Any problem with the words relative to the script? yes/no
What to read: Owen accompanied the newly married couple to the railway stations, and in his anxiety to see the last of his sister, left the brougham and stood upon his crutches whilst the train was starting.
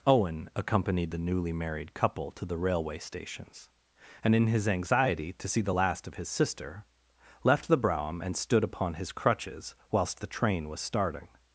no